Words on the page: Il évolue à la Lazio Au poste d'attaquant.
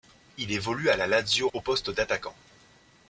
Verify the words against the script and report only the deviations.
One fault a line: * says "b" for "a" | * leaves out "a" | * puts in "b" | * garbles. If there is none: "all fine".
all fine